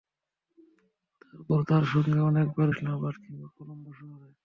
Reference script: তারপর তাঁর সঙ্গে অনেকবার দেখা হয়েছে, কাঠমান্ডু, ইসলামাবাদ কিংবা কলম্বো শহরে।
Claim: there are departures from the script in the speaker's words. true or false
true